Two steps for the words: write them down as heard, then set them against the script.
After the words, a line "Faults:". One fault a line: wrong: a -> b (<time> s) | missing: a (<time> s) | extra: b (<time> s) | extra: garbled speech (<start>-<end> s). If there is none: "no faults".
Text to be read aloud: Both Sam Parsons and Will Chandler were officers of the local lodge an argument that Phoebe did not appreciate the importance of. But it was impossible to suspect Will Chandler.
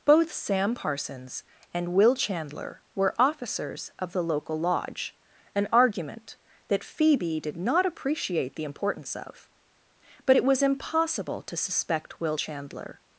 Both Sam Parsons and Will Chandler were officers of the local lodge an argument that Phoebe did not appreciate the importance of. But it was impossible to suspect Will Chandler.
Faults:
no faults